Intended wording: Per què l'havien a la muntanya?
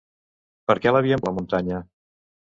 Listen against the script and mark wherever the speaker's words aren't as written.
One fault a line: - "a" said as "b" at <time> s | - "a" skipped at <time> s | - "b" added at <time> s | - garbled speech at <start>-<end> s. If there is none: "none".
none